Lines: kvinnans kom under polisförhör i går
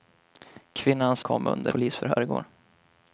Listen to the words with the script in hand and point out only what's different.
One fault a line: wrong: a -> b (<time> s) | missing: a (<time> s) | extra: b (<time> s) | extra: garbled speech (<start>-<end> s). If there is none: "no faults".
no faults